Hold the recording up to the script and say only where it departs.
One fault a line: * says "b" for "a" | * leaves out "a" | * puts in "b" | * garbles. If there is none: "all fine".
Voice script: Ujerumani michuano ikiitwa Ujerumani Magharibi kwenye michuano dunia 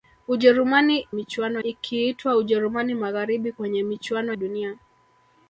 all fine